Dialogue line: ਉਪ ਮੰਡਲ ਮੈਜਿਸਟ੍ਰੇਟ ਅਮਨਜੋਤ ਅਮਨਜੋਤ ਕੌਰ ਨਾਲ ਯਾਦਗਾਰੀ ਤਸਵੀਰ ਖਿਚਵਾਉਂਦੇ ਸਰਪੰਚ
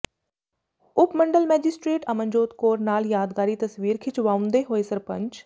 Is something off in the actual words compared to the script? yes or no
yes